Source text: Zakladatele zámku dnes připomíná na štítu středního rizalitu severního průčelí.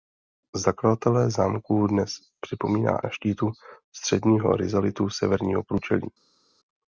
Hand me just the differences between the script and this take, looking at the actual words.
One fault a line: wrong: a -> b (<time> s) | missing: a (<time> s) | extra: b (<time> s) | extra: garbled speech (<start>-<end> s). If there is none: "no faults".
no faults